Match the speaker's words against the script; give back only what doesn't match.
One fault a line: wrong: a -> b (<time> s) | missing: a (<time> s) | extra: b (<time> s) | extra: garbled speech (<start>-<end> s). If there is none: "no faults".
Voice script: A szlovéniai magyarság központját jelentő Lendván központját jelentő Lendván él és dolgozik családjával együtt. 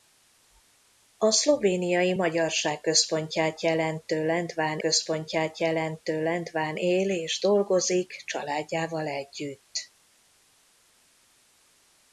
no faults